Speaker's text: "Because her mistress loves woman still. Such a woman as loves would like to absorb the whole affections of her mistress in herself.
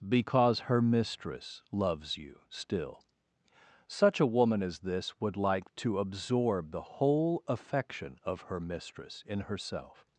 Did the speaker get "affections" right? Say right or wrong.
wrong